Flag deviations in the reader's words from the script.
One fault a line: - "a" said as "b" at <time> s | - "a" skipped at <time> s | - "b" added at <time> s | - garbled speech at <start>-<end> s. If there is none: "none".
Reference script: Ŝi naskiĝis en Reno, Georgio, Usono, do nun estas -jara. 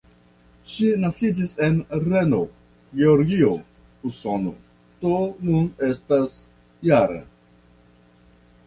none